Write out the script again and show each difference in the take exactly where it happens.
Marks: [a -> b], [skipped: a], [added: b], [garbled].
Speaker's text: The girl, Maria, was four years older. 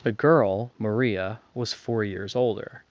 The girl, Maria, was four years older.